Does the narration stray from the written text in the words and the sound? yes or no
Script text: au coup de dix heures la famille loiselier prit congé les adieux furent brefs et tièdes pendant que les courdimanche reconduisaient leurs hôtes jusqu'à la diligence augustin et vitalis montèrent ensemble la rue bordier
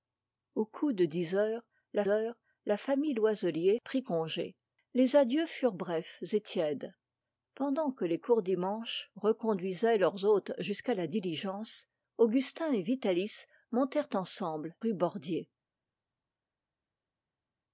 yes